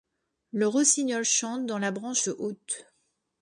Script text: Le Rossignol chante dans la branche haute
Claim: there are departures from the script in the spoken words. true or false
false